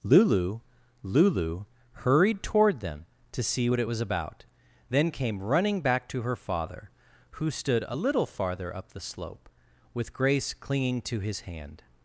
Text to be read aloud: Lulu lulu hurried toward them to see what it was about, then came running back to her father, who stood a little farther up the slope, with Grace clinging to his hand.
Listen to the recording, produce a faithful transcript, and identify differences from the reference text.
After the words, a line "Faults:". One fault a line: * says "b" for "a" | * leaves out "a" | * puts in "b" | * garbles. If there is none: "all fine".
Lulu lulu hurried toward them to see what it was about, then came running back to her father, who stood a little farther up the slope, with Grace clinging to his hand.
Faults:
all fine